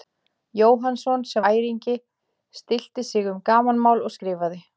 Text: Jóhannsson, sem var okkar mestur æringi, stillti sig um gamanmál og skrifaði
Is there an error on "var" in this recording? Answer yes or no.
yes